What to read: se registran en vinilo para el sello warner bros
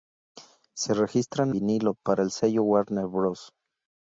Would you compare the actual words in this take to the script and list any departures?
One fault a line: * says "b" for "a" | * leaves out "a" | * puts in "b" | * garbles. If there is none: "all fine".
* leaves out "en"